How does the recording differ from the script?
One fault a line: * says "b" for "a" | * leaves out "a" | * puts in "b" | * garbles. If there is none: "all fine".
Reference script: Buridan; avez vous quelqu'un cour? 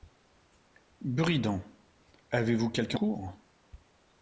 all fine